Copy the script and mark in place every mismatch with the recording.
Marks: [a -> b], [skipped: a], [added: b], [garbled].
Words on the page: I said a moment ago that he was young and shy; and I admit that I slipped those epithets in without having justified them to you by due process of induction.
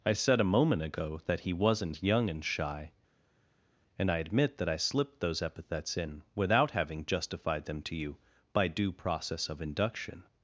I said a moment ago that he [was -> wasn't] young and shy; and I admit that I slipped those epithets in without having justified them to you by due process of induction.